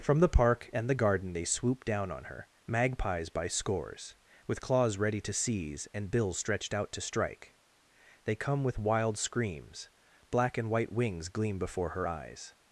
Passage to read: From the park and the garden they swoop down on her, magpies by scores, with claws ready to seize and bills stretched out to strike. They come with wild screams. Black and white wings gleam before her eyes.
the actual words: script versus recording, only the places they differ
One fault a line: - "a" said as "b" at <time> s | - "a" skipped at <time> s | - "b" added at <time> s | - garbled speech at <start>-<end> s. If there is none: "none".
none